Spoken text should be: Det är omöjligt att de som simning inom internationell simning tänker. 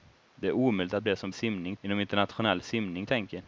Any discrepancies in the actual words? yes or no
no